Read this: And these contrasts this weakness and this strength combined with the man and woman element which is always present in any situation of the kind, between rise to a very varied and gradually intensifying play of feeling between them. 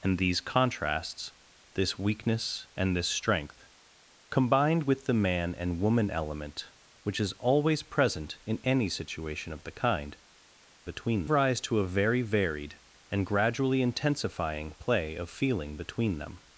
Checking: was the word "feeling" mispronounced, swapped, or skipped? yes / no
no